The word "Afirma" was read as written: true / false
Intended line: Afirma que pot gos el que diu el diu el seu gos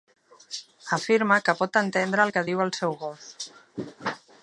true